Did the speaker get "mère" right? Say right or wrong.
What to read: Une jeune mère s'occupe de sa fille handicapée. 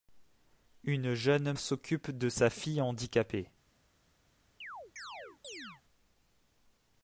wrong